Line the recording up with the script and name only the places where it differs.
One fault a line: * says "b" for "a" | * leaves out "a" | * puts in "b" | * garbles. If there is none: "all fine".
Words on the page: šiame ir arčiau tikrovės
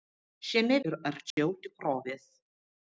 all fine